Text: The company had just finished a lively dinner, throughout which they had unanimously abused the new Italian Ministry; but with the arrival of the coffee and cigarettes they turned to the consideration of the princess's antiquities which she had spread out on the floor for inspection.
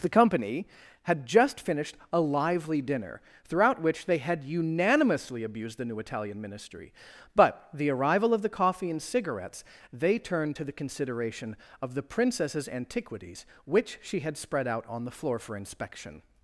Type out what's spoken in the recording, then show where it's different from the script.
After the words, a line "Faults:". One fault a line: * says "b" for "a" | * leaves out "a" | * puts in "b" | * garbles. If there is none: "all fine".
The company had just finished a lively dinner, throughout which they had unanimously abused the new Italian Ministry; but the arrival of the coffee and cigarettes they turned to the consideration of the princess's antiquities which she had spread out on the floor for inspection.
Faults:
* leaves out "with"